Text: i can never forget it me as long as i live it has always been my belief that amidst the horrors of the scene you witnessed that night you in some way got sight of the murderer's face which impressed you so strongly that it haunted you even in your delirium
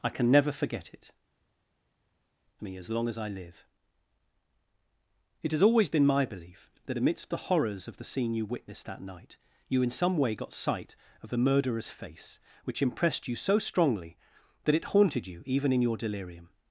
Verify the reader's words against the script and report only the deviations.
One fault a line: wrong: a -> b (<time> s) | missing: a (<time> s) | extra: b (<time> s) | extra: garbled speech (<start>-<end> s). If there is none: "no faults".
no faults